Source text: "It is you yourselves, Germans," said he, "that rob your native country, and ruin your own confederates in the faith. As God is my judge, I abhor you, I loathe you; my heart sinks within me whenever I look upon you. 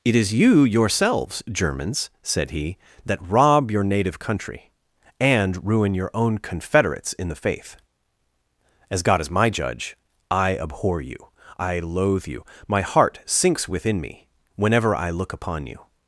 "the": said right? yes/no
yes